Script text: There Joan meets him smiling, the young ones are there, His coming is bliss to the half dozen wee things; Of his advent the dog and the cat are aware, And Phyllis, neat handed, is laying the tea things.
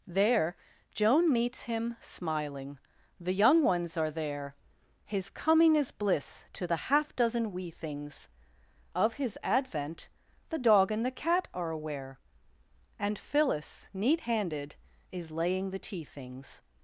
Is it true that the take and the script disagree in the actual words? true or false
false